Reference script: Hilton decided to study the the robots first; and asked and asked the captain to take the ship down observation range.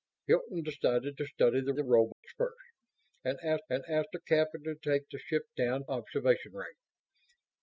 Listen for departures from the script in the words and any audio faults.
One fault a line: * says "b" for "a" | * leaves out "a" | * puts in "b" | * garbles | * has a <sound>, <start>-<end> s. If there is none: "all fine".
* has a dropout, 2.1-2.2 s